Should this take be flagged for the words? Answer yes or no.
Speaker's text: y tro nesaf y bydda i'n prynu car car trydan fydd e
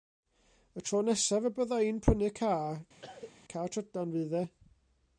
no